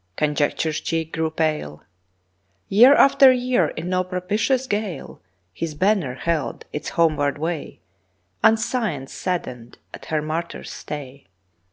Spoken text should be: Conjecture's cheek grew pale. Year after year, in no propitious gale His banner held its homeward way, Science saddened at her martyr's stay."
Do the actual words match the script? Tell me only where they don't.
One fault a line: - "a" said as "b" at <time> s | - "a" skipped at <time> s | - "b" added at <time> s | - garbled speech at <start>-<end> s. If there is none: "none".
- "And" added at 8.4 s